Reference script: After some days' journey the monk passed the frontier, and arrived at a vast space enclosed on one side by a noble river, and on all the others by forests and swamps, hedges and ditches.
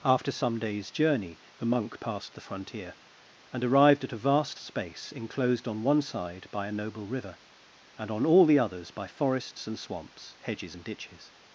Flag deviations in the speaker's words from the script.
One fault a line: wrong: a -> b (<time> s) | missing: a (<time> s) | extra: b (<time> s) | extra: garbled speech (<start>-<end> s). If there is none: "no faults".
no faults